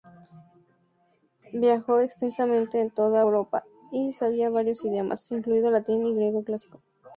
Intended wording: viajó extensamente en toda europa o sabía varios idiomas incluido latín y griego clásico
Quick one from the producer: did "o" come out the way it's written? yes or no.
no